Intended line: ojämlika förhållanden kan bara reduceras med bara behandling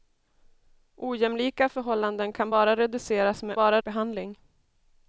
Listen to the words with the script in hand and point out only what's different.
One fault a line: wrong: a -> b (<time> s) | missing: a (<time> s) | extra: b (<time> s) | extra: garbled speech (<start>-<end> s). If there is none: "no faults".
no faults